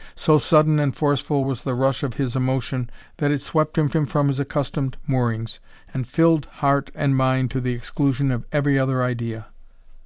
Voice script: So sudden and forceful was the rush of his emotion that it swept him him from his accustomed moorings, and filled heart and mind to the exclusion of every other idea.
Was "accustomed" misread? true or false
false